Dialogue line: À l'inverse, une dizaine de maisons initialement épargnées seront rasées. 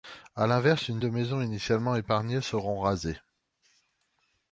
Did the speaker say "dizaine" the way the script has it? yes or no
no